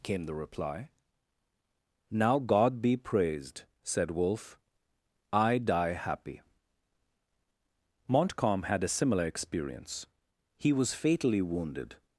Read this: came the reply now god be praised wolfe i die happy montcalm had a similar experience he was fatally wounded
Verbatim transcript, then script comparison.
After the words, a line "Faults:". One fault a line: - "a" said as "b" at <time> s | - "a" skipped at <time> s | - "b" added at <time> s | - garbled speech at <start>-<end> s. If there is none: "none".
came the reply now god be praised said wolfe i die happy montcalm had a similar experience he was fatally wounded
Faults:
- "said" added at 3.8 s